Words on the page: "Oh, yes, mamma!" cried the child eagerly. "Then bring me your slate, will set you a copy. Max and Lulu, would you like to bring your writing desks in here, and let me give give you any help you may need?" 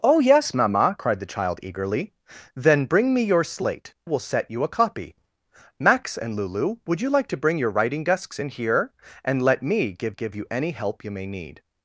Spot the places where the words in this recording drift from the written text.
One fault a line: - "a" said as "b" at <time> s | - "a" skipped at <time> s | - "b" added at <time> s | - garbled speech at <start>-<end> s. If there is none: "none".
none